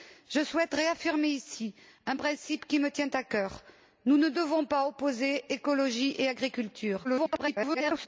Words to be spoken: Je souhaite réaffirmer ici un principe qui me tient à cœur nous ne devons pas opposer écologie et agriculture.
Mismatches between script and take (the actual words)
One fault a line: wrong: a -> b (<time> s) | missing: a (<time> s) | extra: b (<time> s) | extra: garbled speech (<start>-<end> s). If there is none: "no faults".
extra: garbled speech (7.0-8.1 s)